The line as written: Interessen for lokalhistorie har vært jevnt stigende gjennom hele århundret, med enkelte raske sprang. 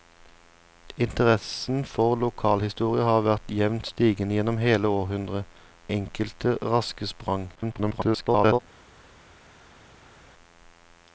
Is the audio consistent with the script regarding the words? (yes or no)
no